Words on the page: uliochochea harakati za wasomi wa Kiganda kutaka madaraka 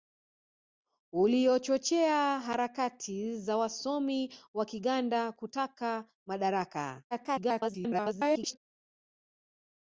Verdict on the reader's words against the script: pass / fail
fail